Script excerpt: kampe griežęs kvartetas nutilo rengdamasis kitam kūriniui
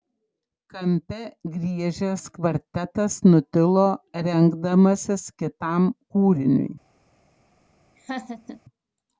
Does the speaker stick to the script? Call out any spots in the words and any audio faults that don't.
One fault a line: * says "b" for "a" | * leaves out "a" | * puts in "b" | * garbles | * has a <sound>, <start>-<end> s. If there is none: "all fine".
* has a laugh, 8.0-8.6 s